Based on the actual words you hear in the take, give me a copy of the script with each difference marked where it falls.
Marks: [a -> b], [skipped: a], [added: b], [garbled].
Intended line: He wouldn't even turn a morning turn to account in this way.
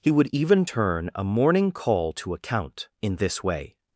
He [wouldn't -> would] even turn a morning [turn -> call] to account in this way.